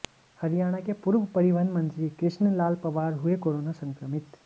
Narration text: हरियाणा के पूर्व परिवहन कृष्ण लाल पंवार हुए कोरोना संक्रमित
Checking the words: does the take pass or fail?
fail